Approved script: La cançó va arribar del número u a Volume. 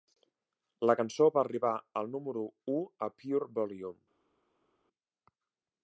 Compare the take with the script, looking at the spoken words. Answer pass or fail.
fail